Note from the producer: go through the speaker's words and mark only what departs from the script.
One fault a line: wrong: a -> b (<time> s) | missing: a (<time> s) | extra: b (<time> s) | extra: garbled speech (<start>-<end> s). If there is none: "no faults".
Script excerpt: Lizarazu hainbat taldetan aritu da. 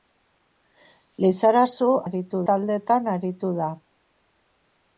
wrong: hainbat -> aritu (2.0 s)